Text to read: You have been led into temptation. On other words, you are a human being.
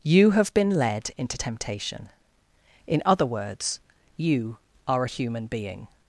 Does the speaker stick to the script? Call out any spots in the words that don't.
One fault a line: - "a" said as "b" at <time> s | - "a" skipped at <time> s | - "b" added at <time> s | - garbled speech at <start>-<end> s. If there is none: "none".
- "On" said as "In" at 2.8 s